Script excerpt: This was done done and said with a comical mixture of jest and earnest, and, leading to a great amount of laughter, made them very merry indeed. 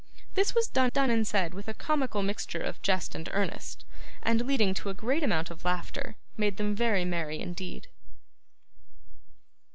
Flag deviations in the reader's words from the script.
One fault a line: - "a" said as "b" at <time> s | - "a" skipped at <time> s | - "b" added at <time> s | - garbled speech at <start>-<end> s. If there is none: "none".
none